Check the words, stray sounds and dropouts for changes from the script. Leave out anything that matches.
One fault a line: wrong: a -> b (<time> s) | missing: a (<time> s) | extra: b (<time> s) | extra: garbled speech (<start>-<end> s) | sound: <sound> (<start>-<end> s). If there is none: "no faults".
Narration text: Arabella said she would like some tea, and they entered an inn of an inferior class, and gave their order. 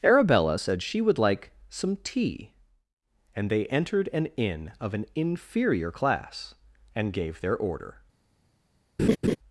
sound: laugh (9.0-9.4 s)